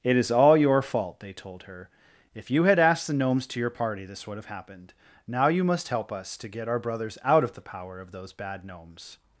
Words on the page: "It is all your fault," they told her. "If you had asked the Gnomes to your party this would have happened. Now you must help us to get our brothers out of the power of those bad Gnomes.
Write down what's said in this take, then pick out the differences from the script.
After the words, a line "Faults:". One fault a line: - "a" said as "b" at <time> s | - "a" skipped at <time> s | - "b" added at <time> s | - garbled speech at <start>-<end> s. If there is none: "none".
"It is all your fault," they told her. "If you had asked the Gnomes to your party this would have happened. Now you must help us to get our brothers out of the power of those bad Gnomes.
Faults:
none